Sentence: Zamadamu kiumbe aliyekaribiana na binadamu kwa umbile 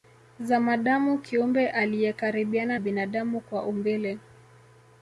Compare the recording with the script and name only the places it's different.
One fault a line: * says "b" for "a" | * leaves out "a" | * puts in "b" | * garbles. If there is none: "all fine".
* leaves out "na"